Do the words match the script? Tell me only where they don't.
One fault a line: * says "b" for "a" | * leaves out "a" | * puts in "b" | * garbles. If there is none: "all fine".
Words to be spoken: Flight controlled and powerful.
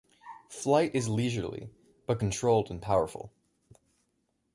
* puts in "is leisurely but"